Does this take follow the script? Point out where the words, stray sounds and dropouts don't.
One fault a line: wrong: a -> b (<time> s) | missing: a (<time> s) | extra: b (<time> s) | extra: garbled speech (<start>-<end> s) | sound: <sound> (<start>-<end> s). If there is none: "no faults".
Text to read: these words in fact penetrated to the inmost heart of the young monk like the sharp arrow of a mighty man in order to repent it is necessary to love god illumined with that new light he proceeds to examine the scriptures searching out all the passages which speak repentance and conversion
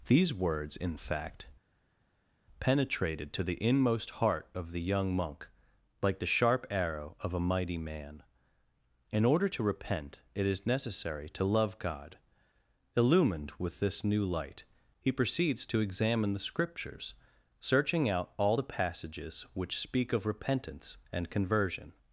wrong: that -> this (13.8 s)
extra: of (20.1 s)